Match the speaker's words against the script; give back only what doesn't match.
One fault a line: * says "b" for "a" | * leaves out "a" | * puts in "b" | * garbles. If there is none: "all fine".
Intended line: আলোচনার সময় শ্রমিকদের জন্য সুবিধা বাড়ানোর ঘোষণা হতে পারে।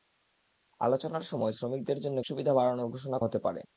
all fine